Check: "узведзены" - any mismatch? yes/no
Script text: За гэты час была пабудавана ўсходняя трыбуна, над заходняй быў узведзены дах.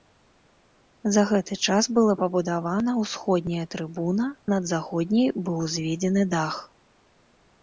no